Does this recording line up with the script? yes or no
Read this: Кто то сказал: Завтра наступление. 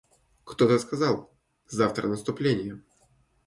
yes